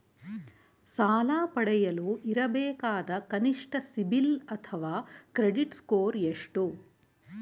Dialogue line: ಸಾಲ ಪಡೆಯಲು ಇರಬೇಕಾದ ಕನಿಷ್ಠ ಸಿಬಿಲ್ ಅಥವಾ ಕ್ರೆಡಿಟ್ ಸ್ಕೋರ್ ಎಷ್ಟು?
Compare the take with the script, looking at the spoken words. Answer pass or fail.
pass